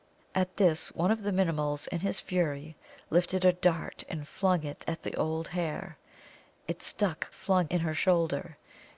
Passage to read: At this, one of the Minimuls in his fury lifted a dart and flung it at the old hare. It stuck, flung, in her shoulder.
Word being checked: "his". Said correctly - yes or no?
yes